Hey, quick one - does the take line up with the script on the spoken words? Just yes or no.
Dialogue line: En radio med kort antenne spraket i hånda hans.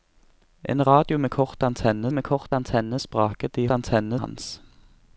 no